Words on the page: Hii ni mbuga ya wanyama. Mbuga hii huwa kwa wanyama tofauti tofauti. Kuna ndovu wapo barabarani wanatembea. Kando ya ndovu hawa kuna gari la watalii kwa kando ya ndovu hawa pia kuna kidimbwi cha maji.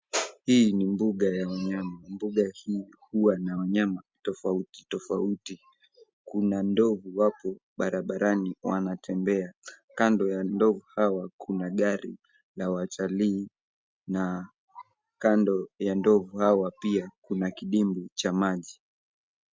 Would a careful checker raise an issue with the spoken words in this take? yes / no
yes